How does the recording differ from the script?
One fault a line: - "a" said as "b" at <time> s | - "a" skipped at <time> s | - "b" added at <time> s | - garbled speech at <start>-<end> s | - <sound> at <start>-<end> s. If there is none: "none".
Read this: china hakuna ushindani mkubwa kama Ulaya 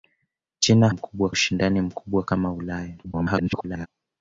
- "hakuna" said as "mkubwa" at 0.9 s
- garbled speech at 3.0-3.9 s